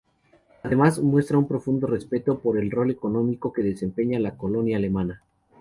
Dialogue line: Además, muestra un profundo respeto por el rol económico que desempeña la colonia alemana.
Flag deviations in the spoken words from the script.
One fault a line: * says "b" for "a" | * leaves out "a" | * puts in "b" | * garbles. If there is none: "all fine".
all fine